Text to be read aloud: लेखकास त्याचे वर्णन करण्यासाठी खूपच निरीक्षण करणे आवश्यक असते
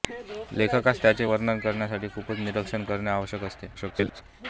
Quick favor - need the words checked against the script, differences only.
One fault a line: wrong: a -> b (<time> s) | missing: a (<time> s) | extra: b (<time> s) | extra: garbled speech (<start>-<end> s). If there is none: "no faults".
extra: garbled speech (3.7-4.2 s)